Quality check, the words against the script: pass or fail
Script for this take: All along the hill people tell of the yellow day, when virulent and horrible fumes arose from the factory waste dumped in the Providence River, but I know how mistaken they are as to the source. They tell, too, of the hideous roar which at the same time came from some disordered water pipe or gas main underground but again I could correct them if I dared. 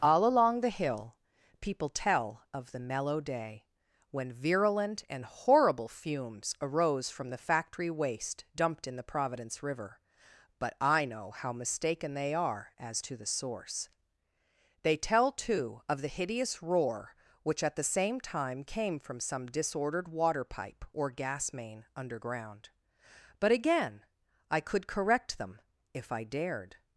fail